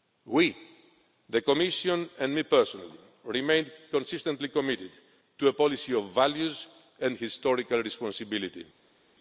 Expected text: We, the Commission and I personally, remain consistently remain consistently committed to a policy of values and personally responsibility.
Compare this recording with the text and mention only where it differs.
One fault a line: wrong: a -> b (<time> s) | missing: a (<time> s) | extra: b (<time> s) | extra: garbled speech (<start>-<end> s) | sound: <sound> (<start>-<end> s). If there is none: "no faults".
missing: remain consistently (4.5 s)
wrong: personally -> historical (7.2 s)